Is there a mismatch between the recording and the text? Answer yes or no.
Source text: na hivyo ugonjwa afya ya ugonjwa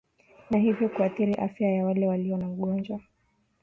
yes